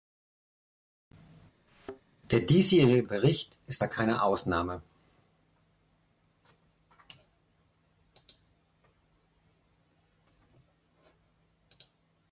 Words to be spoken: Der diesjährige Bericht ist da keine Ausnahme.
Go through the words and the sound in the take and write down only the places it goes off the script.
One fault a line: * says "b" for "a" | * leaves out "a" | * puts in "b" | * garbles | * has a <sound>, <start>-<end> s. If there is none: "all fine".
* has a thud, 1.7-2.0 s